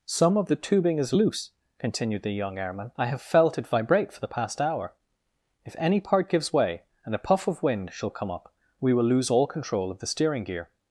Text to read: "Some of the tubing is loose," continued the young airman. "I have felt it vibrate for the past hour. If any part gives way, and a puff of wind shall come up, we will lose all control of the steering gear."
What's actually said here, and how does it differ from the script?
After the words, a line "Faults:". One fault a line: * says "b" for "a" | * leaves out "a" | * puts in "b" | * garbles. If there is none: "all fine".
"Some of the tubing is loose," continued the young airman. "I have felt it vibrate for the past hour. If any part gives way, and a puff of wind shall come up, we will lose all control of the steering gear."
Faults:
all fine